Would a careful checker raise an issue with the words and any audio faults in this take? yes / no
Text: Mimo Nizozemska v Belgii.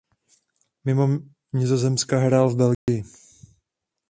yes